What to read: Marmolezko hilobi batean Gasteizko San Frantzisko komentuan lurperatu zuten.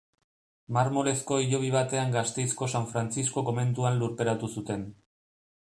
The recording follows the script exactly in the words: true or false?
true